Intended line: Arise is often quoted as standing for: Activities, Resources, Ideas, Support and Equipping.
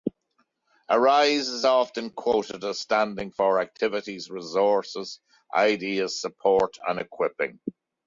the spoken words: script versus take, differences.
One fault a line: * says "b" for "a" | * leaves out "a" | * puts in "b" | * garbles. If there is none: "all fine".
all fine